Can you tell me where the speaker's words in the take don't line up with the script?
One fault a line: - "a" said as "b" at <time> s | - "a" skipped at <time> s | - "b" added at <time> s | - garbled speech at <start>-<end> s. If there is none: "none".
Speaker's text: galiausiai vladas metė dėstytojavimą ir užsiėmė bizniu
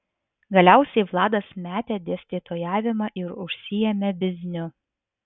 none